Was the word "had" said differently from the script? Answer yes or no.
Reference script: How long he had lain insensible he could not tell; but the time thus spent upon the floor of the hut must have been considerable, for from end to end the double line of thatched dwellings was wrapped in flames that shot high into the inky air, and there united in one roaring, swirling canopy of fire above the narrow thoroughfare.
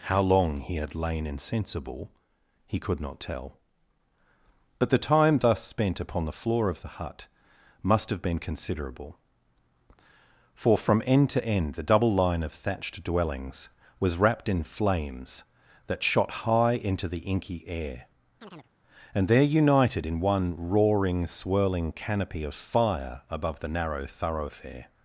no